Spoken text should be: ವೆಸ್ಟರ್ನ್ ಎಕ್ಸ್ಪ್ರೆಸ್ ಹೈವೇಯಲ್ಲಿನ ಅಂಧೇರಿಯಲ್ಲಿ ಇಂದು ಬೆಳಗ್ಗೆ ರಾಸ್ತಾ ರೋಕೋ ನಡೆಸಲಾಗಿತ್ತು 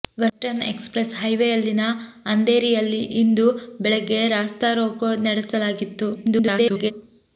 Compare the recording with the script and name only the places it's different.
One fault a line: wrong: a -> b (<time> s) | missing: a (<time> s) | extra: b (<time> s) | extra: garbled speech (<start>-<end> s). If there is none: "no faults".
extra: garbled speech (6.1-6.9 s)